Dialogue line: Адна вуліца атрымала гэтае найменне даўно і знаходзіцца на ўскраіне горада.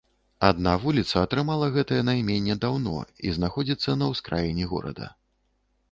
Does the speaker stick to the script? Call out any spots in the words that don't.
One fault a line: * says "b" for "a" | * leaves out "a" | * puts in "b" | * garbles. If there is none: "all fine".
all fine